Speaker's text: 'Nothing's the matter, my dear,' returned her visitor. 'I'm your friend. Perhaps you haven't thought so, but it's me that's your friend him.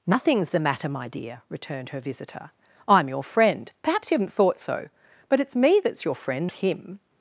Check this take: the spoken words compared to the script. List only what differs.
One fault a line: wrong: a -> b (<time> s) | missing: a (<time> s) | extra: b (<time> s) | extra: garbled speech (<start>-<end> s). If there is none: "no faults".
no faults